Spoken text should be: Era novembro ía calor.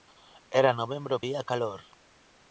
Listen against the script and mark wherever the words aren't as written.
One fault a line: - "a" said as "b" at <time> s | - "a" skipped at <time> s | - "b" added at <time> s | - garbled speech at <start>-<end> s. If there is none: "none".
none